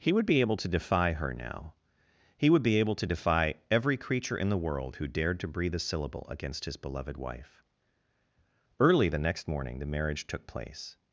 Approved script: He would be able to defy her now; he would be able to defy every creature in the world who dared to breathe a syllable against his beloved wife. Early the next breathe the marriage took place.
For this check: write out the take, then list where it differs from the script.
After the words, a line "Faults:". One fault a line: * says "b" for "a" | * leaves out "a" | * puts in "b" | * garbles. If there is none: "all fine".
He would be able to defy her now; he would be able to defy every creature in the world who dared to breathe a syllable against his beloved wife. Early the next morning the marriage took place.
Faults:
* says "morning" for "breathe"